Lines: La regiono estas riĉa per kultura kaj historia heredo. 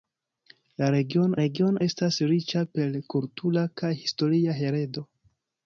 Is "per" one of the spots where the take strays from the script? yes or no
no